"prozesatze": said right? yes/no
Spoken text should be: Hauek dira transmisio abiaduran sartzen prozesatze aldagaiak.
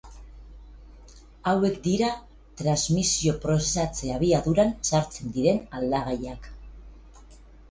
no